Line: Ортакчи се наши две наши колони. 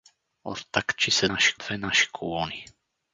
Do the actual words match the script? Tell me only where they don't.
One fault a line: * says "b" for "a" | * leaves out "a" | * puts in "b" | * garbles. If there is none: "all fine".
all fine